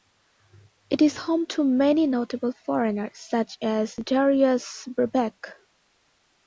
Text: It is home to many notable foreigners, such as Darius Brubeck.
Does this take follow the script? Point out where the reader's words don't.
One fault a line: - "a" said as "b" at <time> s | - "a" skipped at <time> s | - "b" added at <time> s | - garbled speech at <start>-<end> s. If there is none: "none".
none